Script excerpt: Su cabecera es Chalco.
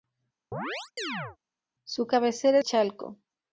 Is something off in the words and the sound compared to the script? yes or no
yes